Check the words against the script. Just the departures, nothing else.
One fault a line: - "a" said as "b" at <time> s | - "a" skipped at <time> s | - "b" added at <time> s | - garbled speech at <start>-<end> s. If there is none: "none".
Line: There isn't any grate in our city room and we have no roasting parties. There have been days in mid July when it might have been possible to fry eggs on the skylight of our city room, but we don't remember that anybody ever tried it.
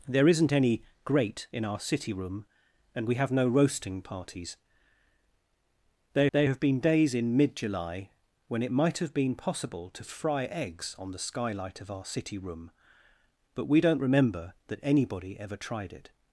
- "there" added at 6.3 s